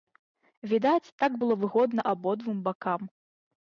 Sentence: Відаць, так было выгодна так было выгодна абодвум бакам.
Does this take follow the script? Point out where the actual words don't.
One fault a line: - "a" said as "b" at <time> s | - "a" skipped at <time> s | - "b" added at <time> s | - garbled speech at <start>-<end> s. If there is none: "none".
- "так было выгодна" skipped at 2.0 s